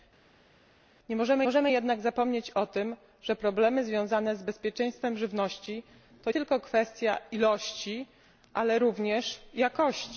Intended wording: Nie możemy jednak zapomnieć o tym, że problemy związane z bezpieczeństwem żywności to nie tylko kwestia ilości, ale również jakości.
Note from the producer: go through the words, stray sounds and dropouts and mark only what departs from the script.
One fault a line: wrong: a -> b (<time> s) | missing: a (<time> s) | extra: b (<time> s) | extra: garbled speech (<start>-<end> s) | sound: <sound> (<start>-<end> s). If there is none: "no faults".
extra: możemy (1.4 s)
missing: nie (6.3 s)